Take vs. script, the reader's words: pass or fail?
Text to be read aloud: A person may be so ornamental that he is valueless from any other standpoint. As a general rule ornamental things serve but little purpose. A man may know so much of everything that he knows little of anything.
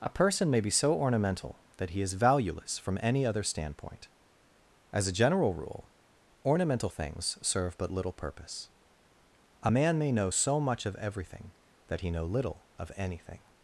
fail